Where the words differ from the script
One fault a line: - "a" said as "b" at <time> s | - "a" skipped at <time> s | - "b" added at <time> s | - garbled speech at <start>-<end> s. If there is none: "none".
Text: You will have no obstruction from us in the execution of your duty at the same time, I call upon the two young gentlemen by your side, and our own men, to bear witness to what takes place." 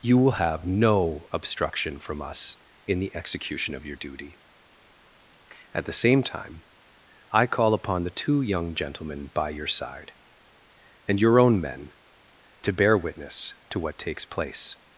- "our" said as "your" at 11.2 s